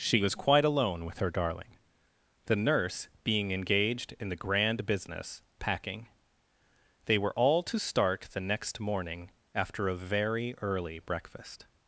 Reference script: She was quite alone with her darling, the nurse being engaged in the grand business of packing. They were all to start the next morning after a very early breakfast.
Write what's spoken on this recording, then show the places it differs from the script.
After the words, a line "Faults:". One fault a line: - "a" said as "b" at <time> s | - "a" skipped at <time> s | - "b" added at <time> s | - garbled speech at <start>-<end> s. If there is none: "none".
She was quite alone with her darling, the nurse being engaged in the grand business packing. They were all to start the next morning after a very early breakfast.
Faults:
- "of" skipped at 5.4 s